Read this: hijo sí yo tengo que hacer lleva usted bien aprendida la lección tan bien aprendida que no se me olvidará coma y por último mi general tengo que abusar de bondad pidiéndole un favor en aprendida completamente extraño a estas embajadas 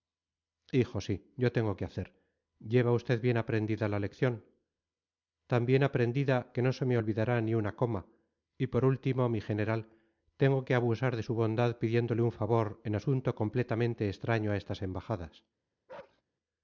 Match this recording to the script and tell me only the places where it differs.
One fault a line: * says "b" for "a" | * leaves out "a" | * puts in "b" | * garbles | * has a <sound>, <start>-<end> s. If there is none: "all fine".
* puts in "ni una"
* puts in "su"
* says "asunto" for "aprendida"
* has a bark, 15.9-16.2 s